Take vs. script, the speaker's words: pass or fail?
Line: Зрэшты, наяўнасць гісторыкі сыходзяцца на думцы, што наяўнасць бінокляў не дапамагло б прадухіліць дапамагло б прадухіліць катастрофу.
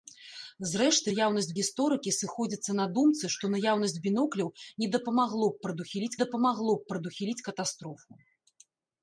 pass